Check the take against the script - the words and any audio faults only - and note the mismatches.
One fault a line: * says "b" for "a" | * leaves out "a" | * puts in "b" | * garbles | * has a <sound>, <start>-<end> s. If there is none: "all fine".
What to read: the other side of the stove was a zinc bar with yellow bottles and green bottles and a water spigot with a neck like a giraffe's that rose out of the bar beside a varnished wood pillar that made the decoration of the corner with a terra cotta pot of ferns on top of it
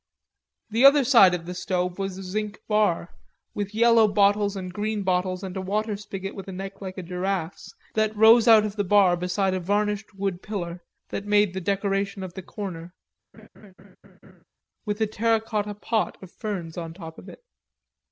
* has a laugh, 13.3-14.4 s